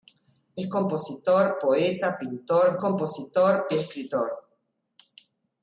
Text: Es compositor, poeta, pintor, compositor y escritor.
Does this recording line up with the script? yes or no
yes